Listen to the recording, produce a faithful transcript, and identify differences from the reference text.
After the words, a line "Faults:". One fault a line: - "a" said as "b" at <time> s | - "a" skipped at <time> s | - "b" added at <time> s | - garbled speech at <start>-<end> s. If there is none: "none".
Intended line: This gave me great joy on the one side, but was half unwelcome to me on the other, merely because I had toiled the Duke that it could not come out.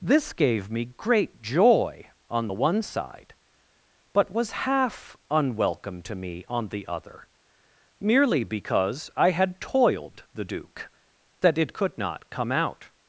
This gave me great joy on the one side, but was half unwelcome to me on the other, merely because I had toiled the Duke that it could not come out.
Faults:
none